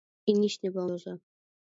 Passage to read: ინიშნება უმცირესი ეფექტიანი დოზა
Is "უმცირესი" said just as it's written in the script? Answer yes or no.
no